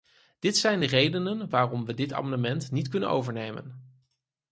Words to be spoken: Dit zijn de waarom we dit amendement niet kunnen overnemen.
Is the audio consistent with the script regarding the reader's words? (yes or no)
no